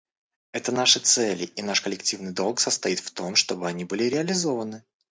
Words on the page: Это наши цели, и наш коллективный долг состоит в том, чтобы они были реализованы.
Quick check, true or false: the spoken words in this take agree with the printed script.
true